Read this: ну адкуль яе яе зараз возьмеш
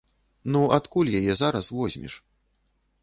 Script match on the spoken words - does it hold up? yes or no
no